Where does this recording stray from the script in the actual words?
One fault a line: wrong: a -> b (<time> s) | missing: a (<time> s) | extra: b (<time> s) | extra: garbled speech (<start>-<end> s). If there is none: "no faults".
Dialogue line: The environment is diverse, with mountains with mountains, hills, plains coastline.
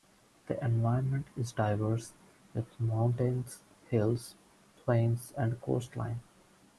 missing: with mountains (3.6 s)
extra: and (5.3 s)